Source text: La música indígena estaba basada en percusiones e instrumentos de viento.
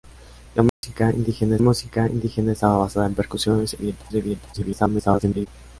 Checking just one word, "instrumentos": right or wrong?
wrong